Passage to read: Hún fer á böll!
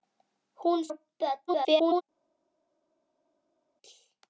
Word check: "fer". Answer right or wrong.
wrong